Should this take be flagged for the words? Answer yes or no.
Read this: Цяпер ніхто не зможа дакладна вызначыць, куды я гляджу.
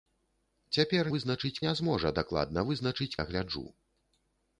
yes